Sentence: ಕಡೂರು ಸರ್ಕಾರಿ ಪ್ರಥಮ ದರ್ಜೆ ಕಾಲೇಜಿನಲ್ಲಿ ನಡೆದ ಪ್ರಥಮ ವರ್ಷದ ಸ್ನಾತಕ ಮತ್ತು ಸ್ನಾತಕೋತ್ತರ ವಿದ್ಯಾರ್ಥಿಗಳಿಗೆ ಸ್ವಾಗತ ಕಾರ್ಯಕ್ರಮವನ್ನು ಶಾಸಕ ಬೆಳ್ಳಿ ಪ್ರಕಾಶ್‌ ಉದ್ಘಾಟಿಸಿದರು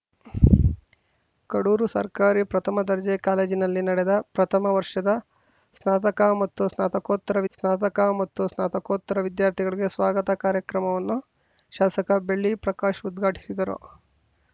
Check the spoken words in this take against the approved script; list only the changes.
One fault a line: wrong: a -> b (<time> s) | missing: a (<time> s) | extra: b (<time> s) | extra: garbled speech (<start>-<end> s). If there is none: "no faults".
extra: ಸ್ನಾತಕ ಮತ್ತು ಸ್ನಾತಕೋತ್ತರ (7.5 s)